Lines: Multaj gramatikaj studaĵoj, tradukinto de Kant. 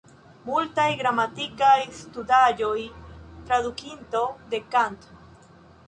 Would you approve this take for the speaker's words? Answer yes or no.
yes